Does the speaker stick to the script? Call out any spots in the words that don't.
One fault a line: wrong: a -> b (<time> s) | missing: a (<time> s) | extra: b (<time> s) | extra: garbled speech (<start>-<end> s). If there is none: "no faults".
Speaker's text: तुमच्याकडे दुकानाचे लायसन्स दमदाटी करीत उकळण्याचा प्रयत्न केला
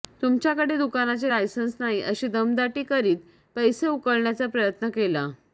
extra: नाही अशी (1.8 s)
extra: पैसे (3.6 s)